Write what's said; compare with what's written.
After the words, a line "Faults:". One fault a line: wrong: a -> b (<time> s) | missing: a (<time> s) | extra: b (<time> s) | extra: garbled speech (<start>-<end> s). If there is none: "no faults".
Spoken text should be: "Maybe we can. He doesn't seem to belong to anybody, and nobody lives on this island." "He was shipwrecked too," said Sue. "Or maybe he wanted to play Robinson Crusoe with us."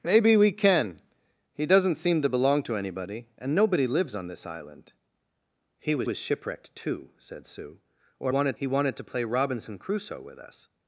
"Maybe we can. He doesn't seem to belong to anybody, and nobody lives on this island." "He was was shipwrecked too," said Sue. "Or wanted he wanted to play Robinson Crusoe with us."
Faults:
extra: was (6.0 s)
wrong: maybe -> wanted (8.3 s)